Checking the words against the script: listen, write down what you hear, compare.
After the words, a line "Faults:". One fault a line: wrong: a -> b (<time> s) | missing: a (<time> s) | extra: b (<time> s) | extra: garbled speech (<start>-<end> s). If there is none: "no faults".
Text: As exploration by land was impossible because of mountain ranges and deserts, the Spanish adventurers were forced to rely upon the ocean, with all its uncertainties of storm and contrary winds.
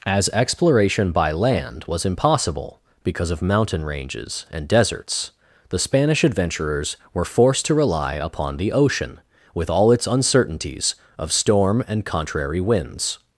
As exploration by land was impossible because of mountain ranges and deserts, the Spanish adventurers were forced to rely upon the ocean, with all its uncertainties of storm and contrary winds.
Faults:
no faults